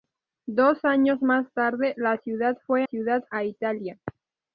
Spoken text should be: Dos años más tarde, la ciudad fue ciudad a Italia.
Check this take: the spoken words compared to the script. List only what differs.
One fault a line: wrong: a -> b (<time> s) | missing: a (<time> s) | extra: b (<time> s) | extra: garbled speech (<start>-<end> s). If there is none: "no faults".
no faults